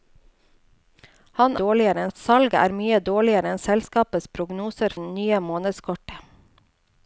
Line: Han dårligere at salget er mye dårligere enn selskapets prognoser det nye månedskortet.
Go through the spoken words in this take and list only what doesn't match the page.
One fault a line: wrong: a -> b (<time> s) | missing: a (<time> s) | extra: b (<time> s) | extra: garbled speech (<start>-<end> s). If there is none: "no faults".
no faults